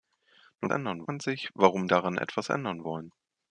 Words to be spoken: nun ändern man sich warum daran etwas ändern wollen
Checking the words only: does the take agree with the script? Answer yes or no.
yes